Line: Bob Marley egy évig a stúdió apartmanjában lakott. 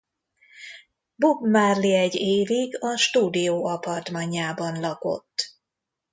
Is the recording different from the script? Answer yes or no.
no